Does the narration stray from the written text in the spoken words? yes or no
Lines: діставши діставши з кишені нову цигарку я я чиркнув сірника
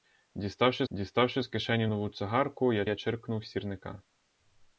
no